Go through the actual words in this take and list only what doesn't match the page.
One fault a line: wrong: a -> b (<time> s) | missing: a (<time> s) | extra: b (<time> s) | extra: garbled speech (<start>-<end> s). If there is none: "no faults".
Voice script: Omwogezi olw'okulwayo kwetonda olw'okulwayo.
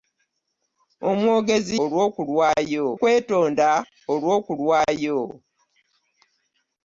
no faults